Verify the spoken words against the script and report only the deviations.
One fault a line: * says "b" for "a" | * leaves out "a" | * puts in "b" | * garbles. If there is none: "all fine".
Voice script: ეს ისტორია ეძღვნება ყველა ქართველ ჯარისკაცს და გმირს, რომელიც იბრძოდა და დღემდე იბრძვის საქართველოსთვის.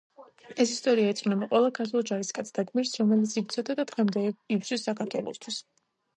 all fine